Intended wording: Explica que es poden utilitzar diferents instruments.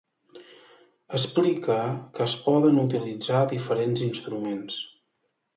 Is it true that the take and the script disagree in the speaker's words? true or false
false